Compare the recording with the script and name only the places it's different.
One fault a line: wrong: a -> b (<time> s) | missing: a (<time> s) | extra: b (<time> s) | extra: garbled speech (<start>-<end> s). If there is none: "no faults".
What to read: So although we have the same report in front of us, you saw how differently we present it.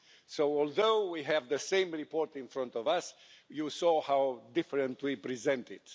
no faults